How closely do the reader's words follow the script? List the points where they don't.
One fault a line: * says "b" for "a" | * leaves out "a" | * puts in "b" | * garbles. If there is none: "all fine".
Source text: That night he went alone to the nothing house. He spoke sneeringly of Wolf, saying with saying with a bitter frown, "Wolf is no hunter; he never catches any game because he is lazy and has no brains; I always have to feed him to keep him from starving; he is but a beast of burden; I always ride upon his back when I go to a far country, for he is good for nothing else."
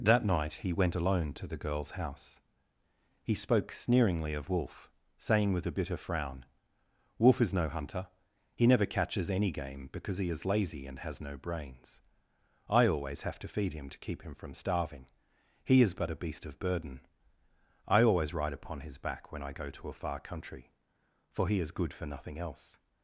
* says "girl's" for "nothing"
* leaves out "saying with"